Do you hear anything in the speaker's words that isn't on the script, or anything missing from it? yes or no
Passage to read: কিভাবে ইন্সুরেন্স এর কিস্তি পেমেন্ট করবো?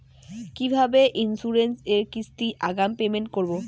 yes